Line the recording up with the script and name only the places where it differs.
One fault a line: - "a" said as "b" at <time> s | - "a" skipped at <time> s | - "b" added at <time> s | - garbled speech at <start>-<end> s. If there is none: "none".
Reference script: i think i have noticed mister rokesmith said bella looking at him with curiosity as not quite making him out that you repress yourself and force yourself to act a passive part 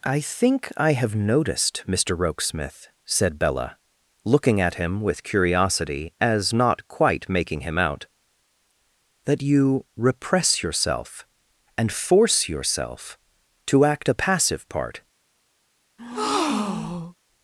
none